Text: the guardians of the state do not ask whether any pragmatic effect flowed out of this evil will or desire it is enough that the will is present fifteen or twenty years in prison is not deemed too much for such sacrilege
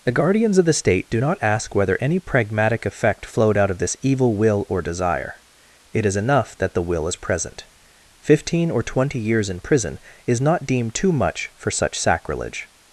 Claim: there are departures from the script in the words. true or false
false